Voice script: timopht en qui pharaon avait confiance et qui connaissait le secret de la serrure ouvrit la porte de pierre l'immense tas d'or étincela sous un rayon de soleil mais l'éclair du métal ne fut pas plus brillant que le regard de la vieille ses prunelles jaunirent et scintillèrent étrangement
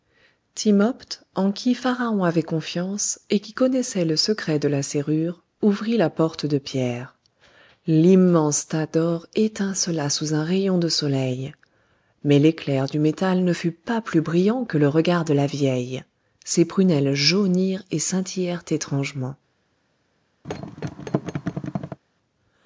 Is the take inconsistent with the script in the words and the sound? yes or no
yes